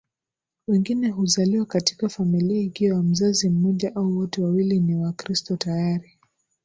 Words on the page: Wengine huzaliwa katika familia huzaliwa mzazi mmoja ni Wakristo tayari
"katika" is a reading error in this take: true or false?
false